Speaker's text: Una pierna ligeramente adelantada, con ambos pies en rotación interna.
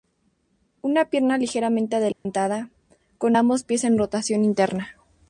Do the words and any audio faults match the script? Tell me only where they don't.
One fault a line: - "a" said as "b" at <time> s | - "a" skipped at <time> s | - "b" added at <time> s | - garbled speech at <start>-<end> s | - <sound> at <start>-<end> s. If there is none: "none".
- dropout at 2.1-2.3 s